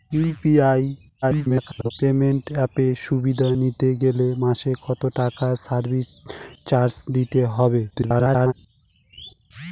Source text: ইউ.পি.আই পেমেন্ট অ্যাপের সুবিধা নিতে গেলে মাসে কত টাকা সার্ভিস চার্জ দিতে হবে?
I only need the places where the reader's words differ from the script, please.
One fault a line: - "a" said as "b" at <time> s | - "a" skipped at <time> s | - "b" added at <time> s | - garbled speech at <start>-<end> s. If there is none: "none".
- garbled speech at 1.2-1.9 s
- garbled speech at 7.9-8.5 s